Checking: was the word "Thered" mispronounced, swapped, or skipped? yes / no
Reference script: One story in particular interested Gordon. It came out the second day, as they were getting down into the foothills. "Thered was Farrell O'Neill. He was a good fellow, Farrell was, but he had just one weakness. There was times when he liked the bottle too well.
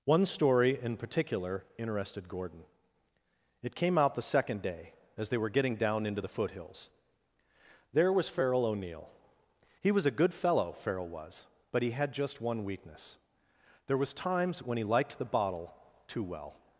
yes